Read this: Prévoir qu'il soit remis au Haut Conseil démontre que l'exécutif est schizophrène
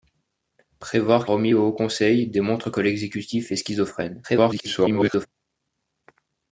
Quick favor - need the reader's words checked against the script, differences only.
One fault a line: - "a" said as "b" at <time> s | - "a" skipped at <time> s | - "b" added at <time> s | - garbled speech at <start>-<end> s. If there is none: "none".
- "qu'il soit" skipped at 1.3 s
- garbled speech at 4.2-5.3 s